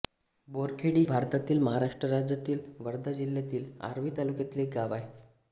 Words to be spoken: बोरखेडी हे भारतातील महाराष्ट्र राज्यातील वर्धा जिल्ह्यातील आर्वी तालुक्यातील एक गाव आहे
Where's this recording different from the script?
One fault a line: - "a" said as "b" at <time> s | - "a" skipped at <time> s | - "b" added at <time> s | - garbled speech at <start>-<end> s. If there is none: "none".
- "हे" skipped at 1.0 s